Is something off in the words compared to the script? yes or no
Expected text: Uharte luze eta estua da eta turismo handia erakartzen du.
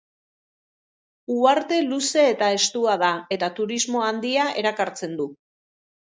no